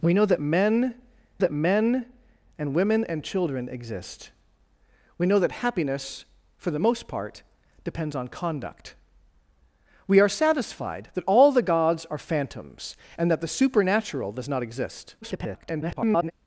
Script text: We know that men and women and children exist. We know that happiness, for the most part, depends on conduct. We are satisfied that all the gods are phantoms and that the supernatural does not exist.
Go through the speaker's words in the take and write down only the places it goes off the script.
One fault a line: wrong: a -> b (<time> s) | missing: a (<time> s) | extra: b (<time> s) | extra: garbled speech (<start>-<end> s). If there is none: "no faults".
extra: that men (1.4 s)
extra: garbled speech (15.2-16.3 s)